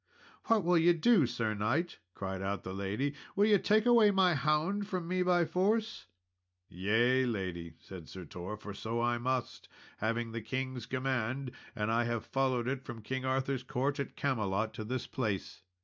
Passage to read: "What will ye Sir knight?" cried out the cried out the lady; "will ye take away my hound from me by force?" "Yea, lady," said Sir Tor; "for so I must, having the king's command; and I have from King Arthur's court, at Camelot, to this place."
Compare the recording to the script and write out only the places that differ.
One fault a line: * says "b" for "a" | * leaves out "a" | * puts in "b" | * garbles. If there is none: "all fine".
* puts in "do"
* leaves out "cried out the"
* puts in "followed it"